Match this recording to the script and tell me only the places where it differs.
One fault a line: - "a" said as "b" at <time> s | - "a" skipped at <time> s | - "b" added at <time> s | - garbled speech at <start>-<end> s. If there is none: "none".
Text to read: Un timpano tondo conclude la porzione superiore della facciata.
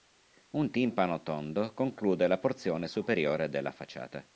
none